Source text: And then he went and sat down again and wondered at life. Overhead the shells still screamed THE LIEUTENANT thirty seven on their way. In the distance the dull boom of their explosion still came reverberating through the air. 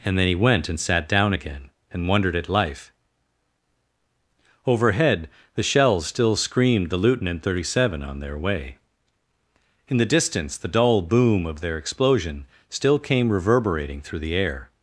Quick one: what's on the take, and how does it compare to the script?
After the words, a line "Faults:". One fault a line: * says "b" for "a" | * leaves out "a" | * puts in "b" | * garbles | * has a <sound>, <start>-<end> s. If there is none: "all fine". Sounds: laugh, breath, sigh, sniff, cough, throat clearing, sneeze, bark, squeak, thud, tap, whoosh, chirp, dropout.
And then he went and sat down again and wondered at life. Overhead the shells still screamed THE LIEUTENANT thirty seven on their way. In the distance the dull boom of their explosion still came reverberating through the air.
Faults:
all fine